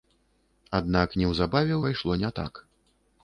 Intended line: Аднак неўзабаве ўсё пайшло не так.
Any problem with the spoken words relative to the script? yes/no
yes